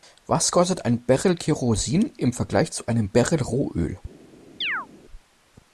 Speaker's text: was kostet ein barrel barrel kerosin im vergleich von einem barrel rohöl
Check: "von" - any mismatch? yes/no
yes